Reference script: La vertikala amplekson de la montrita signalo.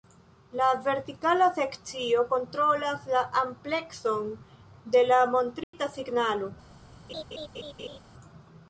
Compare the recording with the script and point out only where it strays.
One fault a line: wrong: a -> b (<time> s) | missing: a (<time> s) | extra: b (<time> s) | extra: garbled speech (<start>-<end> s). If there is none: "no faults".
extra: sekcio kontrolas la (1.6 s)